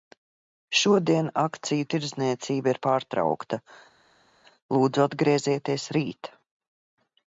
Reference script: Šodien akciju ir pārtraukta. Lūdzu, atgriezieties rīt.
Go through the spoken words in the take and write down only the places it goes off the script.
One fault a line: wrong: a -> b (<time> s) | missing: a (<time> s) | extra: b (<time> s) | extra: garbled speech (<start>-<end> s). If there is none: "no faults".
extra: tirdzniecība (1.9 s)